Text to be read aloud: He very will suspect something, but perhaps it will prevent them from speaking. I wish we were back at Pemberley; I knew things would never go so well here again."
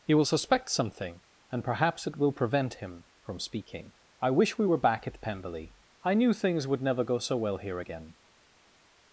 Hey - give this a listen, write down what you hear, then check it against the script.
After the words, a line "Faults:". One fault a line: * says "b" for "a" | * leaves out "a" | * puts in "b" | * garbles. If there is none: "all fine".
He will suspect something, and perhaps it will prevent him from speaking. I wish we were back at Pemberley; I knew things would never go so well here again."
Faults:
* leaves out "very"
* says "and" for "but"
* says "him" for "them"